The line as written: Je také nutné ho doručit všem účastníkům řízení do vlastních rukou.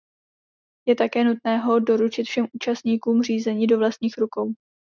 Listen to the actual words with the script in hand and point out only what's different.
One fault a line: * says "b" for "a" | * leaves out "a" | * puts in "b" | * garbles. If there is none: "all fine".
all fine